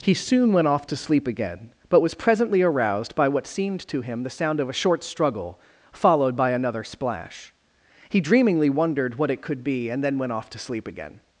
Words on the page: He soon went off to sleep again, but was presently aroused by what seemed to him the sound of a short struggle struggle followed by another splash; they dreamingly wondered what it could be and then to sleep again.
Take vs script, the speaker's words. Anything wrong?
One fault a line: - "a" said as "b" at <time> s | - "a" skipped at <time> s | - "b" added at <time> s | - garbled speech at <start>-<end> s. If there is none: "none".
- "struggle" skipped at 5.6 s
- "they" said as "he" at 8.1 s
- "went off" added at 10.2 s